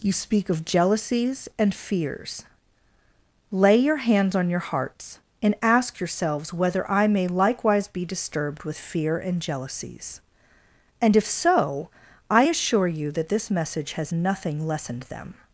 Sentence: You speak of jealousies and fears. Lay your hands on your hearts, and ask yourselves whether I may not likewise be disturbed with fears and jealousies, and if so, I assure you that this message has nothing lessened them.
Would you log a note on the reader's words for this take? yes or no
yes